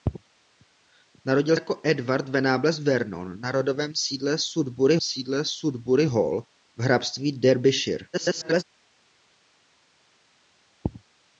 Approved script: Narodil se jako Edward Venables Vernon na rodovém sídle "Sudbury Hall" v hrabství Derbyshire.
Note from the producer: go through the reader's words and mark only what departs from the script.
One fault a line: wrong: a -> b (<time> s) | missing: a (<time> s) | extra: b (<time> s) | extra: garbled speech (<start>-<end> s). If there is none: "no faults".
missing: se (1.6 s)
extra: sídle Sudbury (5.0 s)
extra: garbled speech (8.1-8.6 s)